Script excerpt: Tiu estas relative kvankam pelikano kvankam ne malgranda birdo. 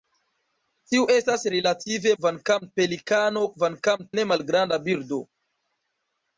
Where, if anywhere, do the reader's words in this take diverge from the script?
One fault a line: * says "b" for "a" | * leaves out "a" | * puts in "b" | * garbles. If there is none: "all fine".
all fine